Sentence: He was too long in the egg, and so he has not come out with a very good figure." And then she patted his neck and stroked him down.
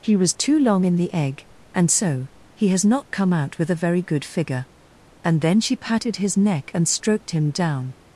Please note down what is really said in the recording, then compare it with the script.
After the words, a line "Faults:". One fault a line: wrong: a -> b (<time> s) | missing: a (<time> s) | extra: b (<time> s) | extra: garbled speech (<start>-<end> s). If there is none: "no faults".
He was too long in the egg, and so he has not come out with a very good figure." And then she patted his neck and stroked him down.
Faults:
no faults